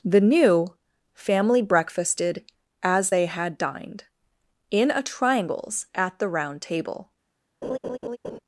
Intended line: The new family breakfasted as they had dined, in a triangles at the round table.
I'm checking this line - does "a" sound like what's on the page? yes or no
yes